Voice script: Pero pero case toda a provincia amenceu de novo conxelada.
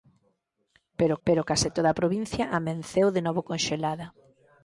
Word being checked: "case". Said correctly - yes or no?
yes